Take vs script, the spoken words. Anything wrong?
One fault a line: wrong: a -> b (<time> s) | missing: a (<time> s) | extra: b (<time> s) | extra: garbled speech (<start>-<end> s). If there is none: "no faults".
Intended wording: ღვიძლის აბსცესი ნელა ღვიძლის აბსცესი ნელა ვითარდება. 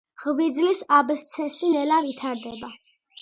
missing: ღვიძლის აბსცესი ნელა (2.0 s)